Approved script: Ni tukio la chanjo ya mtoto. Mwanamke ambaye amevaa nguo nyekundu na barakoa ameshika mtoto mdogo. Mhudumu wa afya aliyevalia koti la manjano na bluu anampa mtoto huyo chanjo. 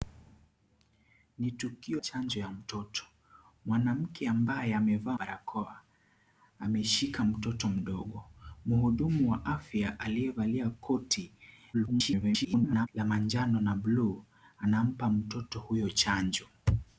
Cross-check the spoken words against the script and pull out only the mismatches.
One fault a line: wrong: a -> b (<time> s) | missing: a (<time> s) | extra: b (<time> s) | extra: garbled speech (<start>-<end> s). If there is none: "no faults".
missing: la (2.0 s)
missing: nguo nyekundu na (5.2 s)
extra: garbled speech (11.7-12.9 s)